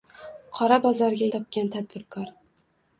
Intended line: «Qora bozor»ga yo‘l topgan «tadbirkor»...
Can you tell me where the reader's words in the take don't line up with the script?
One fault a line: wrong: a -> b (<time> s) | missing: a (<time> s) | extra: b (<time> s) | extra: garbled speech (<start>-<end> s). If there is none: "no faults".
missing: yo‘l (1.3 s)